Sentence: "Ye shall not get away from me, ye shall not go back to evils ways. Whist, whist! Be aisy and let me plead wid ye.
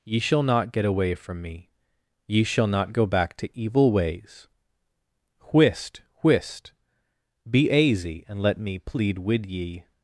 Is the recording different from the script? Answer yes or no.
yes